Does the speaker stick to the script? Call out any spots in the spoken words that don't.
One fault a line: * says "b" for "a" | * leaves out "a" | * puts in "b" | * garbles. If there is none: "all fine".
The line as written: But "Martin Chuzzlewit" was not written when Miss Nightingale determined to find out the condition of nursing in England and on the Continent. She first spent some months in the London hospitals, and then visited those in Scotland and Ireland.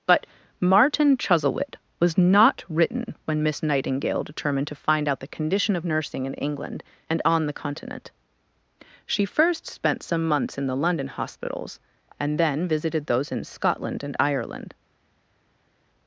all fine